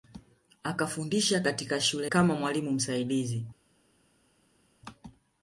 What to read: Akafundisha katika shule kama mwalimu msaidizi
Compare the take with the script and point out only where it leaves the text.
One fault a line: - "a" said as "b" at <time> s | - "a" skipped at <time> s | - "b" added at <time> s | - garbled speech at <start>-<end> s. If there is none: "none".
none